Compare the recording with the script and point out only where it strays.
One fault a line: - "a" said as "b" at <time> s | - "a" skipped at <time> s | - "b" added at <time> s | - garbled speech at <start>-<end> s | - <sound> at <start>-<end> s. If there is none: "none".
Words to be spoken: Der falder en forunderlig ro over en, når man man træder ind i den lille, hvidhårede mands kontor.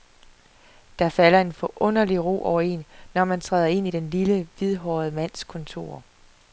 - "man" skipped at 3.4 s